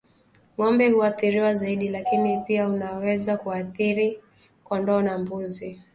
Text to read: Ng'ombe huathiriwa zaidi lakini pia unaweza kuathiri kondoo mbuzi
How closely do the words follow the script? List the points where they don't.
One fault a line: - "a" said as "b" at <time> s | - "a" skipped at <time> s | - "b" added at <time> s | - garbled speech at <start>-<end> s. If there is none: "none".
- "na" added at 5.0 s